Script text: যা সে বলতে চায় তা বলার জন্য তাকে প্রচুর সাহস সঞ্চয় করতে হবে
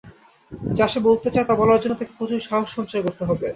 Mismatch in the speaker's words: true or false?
false